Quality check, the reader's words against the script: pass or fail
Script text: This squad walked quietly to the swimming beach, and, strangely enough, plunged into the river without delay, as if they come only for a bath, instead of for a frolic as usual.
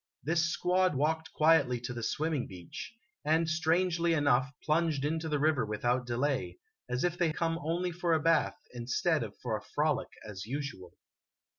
pass